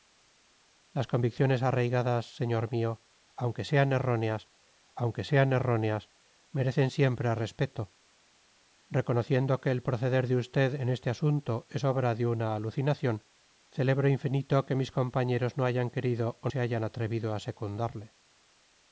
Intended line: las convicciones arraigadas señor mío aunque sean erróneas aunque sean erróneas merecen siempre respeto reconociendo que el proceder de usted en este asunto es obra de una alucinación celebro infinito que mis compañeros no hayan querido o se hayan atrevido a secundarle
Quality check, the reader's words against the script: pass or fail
pass